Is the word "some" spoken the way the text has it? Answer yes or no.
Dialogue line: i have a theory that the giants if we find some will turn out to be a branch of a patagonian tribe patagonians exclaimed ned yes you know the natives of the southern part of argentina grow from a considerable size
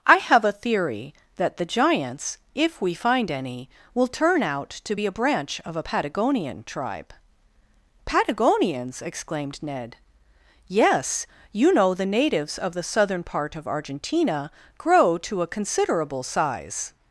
no